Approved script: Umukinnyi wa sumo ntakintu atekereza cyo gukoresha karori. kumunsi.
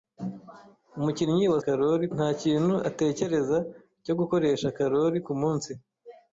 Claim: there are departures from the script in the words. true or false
true